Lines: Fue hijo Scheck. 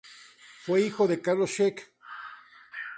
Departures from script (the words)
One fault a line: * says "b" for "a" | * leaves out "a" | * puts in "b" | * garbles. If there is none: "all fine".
* puts in "de Carlos"